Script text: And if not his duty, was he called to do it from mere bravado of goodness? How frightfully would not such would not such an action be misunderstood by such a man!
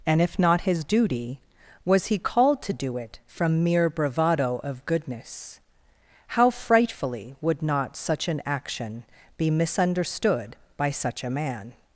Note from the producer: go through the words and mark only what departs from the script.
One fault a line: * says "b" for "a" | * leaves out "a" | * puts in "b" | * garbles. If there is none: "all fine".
* leaves out "would not such"